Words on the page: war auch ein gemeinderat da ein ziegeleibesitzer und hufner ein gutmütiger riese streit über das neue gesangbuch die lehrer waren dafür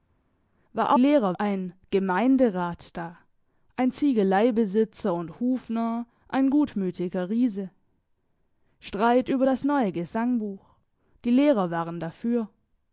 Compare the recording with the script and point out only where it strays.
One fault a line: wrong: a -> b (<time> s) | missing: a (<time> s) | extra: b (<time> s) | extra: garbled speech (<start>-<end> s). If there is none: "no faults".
wrong: auch -> lehrer (1.0 s)